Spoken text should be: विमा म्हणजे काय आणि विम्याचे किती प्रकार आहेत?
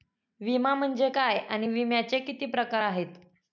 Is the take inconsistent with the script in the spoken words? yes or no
no